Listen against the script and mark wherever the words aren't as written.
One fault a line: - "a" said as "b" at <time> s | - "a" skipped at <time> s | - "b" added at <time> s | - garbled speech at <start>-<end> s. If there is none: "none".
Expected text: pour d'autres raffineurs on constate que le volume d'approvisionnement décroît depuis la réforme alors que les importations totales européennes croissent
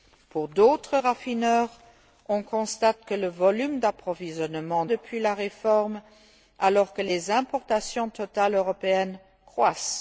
- "décroît" skipped at 4.8 s